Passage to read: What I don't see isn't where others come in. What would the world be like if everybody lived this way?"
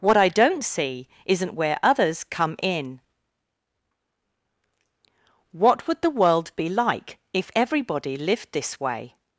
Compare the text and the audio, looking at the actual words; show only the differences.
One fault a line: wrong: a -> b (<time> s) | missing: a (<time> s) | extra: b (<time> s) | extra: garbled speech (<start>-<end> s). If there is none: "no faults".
no faults